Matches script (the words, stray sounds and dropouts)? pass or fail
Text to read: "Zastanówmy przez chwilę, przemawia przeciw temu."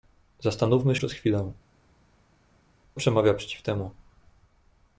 pass